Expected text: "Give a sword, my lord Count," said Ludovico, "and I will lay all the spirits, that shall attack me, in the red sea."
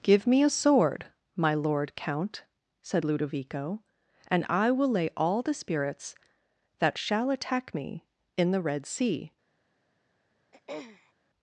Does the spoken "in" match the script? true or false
true